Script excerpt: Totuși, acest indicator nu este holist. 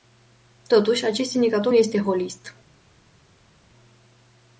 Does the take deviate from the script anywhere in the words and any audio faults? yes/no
yes